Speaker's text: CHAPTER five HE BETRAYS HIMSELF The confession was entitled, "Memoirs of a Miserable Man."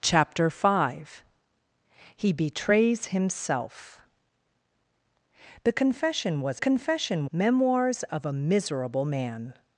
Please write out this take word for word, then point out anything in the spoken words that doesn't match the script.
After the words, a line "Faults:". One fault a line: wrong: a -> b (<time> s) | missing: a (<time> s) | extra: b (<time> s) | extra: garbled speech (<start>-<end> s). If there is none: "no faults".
CHAPTER five HE BETRAYS HIMSELF The confession was confession, "Memoirs of a Miserable Man."
Faults:
wrong: entitled -> confession (6.6 s)